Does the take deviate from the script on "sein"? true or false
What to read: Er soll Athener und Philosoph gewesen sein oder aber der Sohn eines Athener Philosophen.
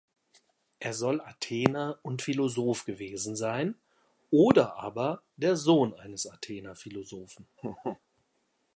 false